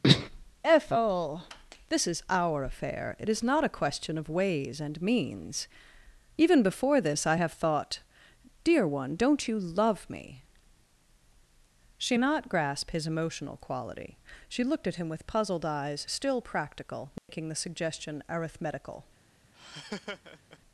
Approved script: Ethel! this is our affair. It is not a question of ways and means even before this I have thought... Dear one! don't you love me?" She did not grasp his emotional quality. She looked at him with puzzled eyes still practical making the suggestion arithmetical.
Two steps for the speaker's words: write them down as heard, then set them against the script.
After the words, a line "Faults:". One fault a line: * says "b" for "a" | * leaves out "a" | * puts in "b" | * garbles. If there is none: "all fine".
Ethel! this is our affair. It is not a question of ways and means even before this I have thought... Dear one! don't you love me?" She not grasp his emotional quality. She looked at him with puzzled eyes still practical making the suggestion arithmetical.
Faults:
* leaves out "did"